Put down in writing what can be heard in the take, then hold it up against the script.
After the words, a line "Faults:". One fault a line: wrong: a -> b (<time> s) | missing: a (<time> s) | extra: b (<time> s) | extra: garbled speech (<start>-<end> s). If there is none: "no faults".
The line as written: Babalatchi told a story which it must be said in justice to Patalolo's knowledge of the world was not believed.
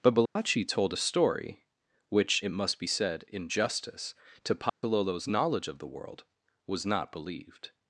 Babalatchi told a story which it must be said in justice to Patalolo's knowledge of the world was not believed.
Faults:
no faults